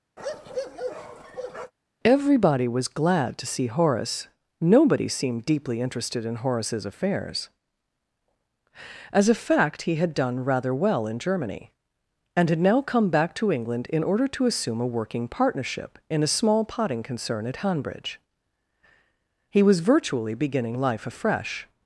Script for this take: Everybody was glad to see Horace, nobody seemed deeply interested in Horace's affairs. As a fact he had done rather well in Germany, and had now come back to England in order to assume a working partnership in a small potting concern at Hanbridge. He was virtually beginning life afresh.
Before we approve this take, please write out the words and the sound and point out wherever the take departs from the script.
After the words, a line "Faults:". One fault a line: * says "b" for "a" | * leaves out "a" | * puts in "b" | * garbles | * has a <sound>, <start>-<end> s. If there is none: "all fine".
Everybody was glad to see Horace, nobody seemed deeply interested in Horace's affairs. As a fact he had done rather well in Germany, and had now come back to England in order to assume a working partnership in a small potting concern at Hanbridge. He was virtually beginning life afresh.
Faults:
* has a bark, 0.2-1.7 s